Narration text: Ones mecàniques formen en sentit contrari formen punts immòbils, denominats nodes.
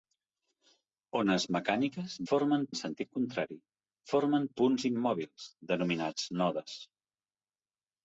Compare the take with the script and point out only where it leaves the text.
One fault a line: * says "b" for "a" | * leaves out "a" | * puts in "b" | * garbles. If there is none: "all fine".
all fine